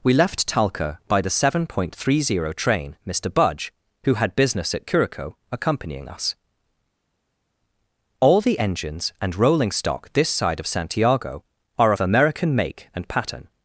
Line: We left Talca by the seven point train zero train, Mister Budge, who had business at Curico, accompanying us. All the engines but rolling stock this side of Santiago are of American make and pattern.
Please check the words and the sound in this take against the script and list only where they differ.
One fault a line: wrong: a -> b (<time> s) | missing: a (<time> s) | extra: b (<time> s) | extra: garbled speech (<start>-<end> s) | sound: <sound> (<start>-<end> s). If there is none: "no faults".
wrong: train -> three (1.9 s)
wrong: but -> and (9.2 s)